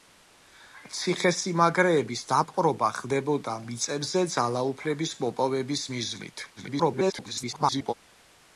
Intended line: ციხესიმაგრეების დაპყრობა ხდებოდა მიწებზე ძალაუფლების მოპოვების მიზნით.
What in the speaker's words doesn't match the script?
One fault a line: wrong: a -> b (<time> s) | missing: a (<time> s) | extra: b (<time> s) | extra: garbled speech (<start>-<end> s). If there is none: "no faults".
extra: garbled speech (6.6-7.9 s)